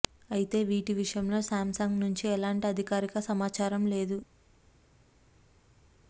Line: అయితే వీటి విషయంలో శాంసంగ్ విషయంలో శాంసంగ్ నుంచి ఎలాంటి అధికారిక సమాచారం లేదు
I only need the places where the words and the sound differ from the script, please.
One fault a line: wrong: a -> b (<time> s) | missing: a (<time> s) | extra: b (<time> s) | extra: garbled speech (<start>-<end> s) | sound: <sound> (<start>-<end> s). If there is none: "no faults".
missing: విషయంలో శాంసంగ్ (2.0 s)